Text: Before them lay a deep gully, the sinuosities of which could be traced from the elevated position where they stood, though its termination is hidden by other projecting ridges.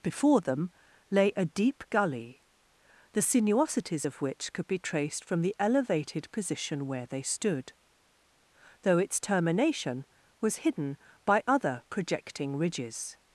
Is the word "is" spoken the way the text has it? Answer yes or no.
no